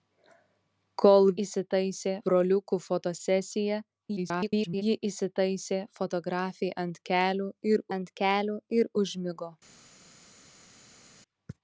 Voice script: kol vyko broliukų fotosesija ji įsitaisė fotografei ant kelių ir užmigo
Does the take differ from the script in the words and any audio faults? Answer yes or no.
yes